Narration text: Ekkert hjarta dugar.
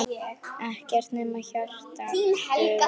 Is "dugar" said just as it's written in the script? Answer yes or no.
yes